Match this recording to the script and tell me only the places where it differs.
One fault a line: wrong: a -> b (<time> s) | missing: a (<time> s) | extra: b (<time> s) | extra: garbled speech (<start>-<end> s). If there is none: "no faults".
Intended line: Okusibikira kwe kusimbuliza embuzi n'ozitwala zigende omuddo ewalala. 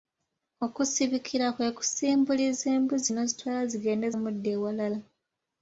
no faults